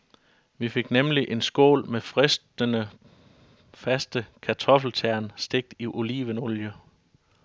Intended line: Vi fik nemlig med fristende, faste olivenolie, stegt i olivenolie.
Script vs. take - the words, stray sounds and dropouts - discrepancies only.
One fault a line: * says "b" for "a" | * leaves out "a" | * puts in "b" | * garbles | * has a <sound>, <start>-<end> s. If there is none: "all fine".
* puts in "en skål"
* says "kartoffeltern" for "olivenolie"